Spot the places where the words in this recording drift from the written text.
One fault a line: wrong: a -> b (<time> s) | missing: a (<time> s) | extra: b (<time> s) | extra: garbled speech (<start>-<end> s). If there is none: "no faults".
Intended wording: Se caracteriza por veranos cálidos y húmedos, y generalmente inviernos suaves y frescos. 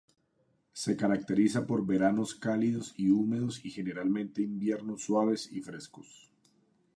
no faults